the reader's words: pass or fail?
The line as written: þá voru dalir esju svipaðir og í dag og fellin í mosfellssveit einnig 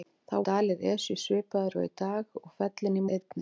fail